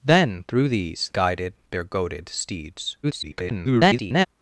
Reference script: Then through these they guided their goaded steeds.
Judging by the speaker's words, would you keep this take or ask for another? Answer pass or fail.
fail